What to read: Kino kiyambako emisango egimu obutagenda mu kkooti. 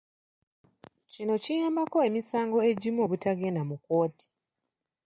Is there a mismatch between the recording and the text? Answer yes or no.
no